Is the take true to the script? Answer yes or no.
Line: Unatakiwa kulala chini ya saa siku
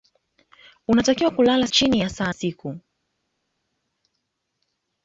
yes